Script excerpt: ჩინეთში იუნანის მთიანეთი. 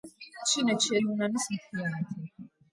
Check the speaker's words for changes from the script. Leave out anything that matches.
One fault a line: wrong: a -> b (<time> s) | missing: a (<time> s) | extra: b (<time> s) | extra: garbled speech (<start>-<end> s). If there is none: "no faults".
no faults